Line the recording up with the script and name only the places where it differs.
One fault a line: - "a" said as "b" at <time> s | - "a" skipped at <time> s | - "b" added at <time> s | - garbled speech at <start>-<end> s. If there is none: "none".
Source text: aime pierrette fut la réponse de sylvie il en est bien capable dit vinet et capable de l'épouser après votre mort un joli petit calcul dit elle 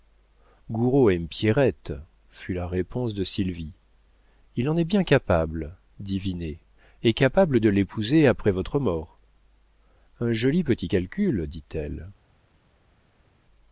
none